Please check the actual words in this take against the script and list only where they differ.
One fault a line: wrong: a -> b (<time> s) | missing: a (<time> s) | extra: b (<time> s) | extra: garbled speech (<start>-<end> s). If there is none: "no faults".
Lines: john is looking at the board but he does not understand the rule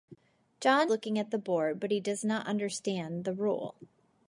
missing: is (0.9 s)